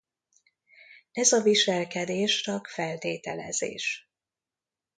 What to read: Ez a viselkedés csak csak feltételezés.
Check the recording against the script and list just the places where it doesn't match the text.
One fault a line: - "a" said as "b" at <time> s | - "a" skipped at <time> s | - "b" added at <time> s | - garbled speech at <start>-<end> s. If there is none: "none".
- "csak" skipped at 2.7 s